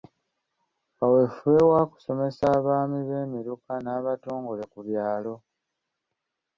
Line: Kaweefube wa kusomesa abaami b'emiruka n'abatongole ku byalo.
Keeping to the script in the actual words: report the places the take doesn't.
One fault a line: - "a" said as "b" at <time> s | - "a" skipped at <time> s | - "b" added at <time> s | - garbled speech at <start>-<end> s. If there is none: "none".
none